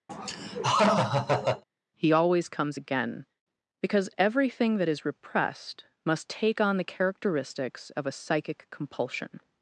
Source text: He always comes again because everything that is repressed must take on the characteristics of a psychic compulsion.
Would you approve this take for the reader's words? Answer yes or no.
yes